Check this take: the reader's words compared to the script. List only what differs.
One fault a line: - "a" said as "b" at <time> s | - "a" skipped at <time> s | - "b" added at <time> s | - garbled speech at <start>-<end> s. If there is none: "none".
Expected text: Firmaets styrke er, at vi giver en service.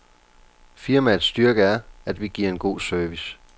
- "god" added at 2.6 s